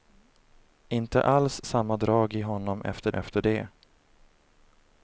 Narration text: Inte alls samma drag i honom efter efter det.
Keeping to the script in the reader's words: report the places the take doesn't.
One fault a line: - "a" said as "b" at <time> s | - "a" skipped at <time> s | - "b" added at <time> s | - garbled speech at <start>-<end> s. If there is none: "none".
none